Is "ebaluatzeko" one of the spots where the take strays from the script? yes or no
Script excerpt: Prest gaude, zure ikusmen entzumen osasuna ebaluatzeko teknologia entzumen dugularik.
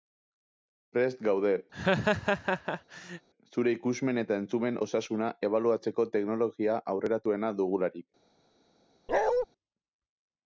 no